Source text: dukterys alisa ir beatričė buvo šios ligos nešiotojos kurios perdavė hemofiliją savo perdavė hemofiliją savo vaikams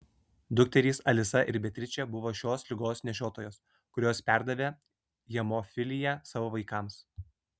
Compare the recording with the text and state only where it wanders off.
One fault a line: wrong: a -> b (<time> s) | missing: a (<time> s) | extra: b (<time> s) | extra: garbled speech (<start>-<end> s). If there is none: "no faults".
missing: perdavė hemofiliją savo (6.5 s)